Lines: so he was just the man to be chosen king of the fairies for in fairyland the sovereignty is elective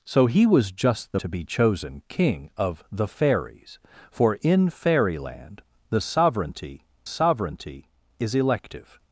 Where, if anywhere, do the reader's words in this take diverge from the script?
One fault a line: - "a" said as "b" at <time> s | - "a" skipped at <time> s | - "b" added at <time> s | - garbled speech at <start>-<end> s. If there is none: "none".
- "man" skipped at 1.2 s
- "sovereignty" added at 7.0 s